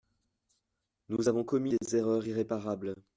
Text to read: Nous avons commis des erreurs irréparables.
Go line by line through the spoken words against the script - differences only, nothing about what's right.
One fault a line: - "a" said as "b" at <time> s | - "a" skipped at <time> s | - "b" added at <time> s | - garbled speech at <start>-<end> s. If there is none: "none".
none